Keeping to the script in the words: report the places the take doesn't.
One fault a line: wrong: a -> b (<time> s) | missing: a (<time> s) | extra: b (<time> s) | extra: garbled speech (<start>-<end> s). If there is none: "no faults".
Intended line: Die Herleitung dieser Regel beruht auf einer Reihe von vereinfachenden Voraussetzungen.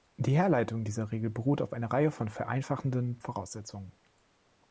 no faults